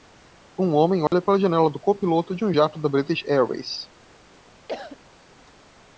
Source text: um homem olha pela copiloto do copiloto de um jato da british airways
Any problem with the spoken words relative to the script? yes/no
yes